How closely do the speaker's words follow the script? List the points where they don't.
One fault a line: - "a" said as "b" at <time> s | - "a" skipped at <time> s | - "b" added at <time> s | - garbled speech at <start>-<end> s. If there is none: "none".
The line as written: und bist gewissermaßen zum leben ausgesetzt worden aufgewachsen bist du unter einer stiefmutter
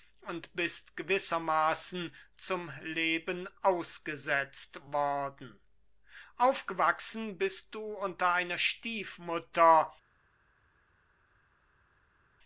none